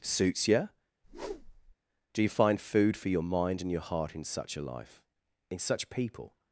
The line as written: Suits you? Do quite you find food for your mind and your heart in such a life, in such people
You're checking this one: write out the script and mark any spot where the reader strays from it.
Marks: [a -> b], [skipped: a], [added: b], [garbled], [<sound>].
Suits you? [whoosh] Do [skipped: quite] you find food for your mind and your heart in such a life, in such people